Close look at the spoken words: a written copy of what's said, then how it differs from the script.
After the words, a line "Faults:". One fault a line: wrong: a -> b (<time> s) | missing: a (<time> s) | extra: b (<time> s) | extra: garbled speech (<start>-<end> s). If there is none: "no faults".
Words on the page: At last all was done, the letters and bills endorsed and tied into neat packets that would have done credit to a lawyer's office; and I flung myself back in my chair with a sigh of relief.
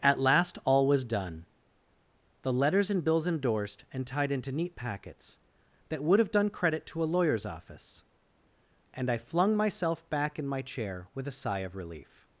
At last all was done, the letters and bills endorsed and tied into neat packets that would have done credit to a lawyer's office; and I flung myself back in my chair with a sigh of relief.
Faults:
no faults